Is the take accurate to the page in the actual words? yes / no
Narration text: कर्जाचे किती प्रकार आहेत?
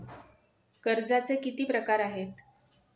yes